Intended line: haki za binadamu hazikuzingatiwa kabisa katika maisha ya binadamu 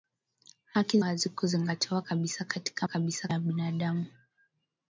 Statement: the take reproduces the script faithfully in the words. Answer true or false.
false